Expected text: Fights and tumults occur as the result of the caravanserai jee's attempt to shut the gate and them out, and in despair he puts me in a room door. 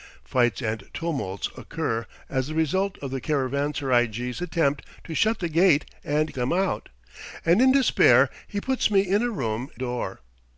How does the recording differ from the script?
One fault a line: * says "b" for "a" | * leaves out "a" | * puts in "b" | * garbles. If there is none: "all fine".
all fine